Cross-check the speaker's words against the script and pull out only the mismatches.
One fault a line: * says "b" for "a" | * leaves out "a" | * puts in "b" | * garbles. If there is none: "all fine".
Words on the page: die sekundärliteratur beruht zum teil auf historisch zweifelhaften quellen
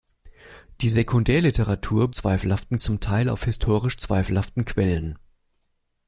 * says "zweifelhaften" for "beruht"